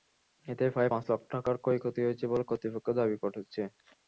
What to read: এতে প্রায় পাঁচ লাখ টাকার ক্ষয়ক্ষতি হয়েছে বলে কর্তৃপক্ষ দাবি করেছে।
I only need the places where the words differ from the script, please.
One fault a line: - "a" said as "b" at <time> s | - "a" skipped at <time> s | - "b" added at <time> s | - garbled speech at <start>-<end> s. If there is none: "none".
none